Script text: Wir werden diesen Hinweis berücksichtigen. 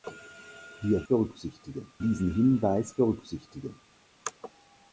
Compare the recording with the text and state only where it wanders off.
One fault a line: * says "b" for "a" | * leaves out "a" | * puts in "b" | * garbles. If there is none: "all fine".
* says "berücksichtigen" for "werden"